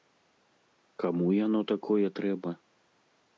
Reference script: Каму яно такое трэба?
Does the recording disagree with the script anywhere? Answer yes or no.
no